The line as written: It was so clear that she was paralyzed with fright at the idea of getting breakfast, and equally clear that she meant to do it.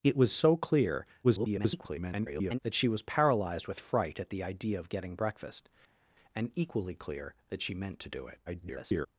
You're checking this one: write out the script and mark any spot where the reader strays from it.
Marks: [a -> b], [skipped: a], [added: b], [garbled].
It was so clear [garbled] that she was paralyzed with fright at the idea of getting breakfast, and equally clear that she meant to do it. [garbled]